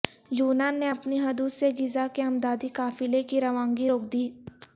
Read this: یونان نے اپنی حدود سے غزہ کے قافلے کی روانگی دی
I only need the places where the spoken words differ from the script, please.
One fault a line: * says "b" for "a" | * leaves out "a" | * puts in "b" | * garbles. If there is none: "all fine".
* puts in "امدادی"
* puts in "روک"